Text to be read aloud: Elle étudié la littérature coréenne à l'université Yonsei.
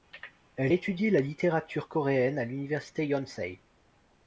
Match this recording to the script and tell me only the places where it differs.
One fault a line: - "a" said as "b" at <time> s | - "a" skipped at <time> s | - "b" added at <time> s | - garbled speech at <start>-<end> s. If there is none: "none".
none